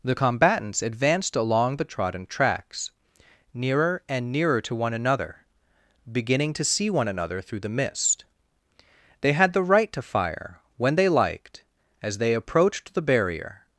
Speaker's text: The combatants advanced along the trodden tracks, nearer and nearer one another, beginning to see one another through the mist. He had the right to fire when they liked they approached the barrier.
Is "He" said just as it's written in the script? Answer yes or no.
no